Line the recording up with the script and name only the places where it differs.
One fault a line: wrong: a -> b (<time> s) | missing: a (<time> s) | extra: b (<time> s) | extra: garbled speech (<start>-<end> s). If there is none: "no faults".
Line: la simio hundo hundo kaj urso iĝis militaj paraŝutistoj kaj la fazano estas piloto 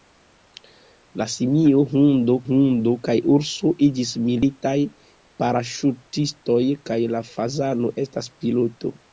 no faults